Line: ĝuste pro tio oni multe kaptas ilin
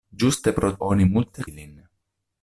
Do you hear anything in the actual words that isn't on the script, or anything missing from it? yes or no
yes